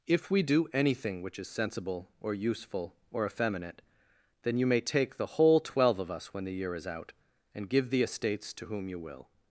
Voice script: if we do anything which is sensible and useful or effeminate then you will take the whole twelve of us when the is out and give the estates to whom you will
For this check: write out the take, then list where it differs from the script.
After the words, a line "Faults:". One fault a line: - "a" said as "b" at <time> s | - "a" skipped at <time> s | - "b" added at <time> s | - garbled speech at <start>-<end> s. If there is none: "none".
if we do anything which is sensible or useful or effeminate then you may take the whole twelve of us when the year is out and give the estates to whom you will
Faults:
- "and" said as "or" at 2.2 s
- "will" said as "may" at 4.7 s
- "year" added at 6.5 s